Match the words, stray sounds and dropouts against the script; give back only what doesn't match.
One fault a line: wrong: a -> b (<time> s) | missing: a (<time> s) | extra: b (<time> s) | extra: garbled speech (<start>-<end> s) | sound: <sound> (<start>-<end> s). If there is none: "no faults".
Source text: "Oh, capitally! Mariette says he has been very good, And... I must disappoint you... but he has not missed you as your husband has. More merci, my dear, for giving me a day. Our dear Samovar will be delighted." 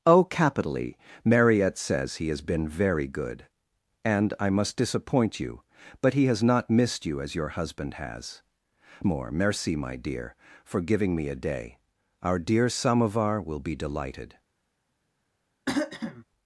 sound: throat clearing (15.7-16.2 s)